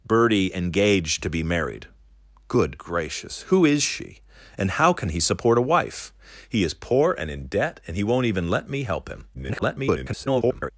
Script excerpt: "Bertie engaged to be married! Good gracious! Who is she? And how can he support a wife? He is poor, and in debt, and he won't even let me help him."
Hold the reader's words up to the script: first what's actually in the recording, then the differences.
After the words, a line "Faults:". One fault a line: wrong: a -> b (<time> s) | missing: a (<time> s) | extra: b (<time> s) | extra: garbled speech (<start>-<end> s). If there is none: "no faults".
"Bertie engaged to be married! Good gracious! Who is she? And how can he support a wife? He is poor, and in debt, and he won't even let me help him." [garbled]
Faults:
extra: garbled speech (9.3-10.7 s)